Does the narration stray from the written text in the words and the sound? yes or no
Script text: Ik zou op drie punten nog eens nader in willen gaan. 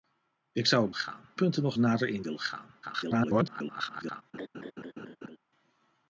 yes